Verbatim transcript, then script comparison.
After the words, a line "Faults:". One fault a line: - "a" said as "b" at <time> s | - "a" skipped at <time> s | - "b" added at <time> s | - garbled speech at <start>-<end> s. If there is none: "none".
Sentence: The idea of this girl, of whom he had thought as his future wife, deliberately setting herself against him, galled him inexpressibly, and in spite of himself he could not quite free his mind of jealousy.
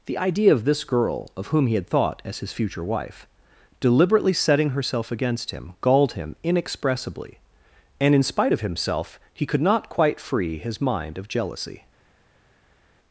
The idea of this girl, of whom he had thought as his future wife, deliberately setting herself against him, galled him inexpressibly, and in spite of himself he could not quite free his mind of jealousy.
Faults:
none